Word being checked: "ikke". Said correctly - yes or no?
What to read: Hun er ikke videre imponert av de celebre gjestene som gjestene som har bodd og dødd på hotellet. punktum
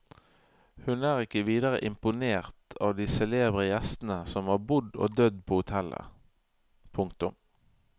yes